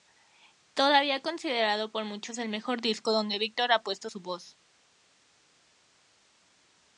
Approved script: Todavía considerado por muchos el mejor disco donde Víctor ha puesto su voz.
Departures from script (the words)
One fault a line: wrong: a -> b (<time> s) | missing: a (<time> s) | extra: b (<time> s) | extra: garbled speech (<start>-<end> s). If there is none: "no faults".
no faults